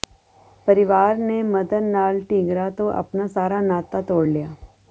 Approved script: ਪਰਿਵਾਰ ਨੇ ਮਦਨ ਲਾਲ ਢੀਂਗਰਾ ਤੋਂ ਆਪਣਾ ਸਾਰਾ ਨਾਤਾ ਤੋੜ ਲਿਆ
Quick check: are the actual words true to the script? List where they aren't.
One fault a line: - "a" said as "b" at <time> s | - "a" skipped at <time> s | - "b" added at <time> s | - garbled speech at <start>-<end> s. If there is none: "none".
none